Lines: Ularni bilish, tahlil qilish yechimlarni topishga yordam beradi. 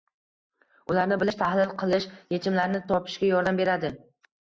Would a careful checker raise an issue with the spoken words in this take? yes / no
no